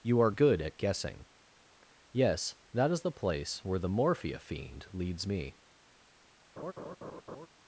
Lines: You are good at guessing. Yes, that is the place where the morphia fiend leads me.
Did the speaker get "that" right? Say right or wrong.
right